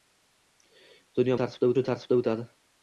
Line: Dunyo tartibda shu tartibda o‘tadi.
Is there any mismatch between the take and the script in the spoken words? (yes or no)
no